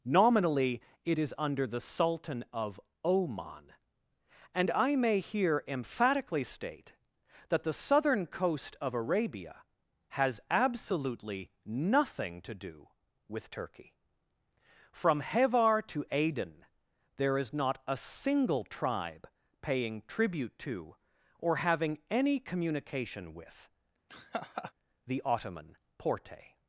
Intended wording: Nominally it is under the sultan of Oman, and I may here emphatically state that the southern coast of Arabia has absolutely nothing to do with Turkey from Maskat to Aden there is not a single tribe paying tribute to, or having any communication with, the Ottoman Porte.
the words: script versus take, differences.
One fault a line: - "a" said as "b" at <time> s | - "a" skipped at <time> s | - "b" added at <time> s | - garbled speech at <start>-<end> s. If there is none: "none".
- "Maskat" said as "Hevar" at 15.2 s